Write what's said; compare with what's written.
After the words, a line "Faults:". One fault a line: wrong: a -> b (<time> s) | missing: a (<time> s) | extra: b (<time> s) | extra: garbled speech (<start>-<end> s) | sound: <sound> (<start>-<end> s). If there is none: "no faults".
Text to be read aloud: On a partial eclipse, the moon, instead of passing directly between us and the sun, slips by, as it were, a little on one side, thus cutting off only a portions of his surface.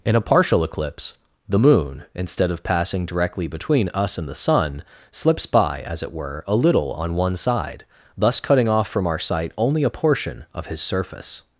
In a partial eclipse, the moon, instead of passing directly between us and the sun, slips by, as it were, a little on one side, thus cutting off from our sight only a portion of his surface.
Faults:
wrong: On -> In (0.0 s)
extra: from our sight (8.9 s)
wrong: portions -> portion (9.9 s)